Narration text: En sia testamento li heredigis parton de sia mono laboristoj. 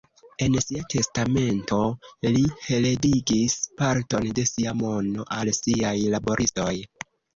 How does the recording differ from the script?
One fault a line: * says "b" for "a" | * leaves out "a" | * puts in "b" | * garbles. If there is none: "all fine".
* puts in "al siaj"